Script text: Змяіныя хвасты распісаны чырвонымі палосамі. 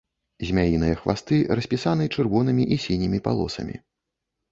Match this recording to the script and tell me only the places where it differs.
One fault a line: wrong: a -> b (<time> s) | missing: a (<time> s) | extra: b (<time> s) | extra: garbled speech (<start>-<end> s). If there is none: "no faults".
extra: і сінімі (2.7 s)